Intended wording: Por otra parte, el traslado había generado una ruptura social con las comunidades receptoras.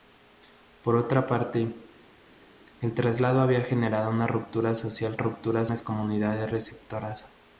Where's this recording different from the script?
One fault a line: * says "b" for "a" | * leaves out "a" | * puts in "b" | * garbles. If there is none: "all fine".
* says "ruptura" for "con"